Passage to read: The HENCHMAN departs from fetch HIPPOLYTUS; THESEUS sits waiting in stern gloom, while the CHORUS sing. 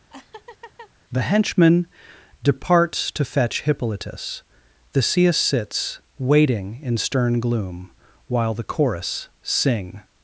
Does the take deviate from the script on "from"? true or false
true